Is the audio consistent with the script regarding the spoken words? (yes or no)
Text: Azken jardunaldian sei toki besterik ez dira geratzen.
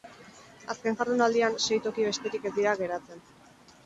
yes